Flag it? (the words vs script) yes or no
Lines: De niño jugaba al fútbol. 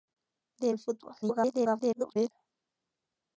yes